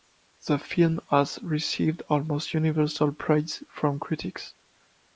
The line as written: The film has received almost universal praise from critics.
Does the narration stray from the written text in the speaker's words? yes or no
no